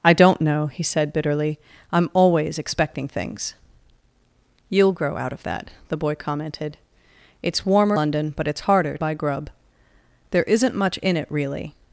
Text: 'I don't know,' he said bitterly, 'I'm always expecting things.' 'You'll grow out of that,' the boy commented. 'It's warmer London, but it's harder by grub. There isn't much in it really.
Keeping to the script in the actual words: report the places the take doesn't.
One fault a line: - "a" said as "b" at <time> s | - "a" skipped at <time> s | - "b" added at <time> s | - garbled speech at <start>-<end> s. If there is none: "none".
none